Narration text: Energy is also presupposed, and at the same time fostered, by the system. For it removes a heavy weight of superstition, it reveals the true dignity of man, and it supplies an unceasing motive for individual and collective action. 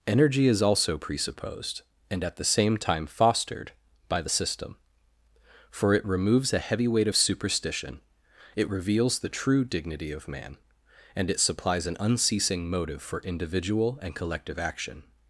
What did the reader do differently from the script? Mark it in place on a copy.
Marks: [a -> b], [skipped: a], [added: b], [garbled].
Energy is also presupposed, and at the same time fostered, by the system. For it removes a heavy weight of superstition, it reveals the true dignity of man, and it supplies an unceasing motive for individual and collective action.